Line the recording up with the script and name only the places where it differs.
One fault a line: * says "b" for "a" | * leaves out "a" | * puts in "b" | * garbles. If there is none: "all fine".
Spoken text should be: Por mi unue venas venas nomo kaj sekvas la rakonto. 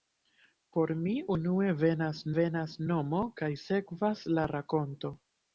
all fine